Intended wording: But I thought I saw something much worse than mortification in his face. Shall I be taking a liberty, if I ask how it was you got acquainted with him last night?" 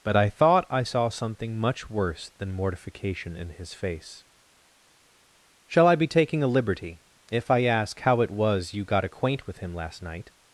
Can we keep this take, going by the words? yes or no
no